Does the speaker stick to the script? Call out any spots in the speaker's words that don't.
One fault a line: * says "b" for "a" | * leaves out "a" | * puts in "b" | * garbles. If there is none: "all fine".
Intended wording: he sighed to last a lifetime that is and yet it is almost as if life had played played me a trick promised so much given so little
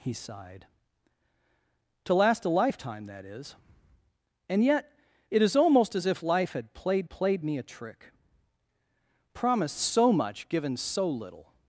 all fine